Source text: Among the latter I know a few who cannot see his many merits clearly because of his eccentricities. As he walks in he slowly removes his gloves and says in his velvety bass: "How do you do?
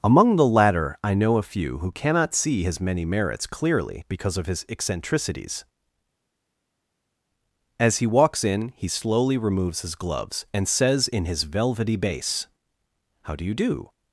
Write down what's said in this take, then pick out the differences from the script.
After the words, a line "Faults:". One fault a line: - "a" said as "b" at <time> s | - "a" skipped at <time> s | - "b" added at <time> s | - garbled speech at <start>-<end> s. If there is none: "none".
Among the latter I know a few who cannot see his many merits clearly because of his eccentricities. As he walks in he slowly removes his gloves and says in his velvety bass: "How do you do?
Faults:
none